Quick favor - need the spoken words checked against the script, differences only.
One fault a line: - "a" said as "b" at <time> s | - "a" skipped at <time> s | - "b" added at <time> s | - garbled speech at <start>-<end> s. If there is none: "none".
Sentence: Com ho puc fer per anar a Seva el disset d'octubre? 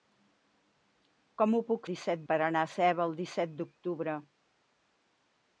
- "fer" said as "disset" at 1.9 s